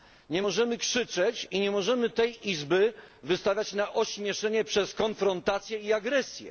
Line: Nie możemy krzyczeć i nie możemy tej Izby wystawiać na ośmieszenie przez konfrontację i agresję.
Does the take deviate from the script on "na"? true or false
false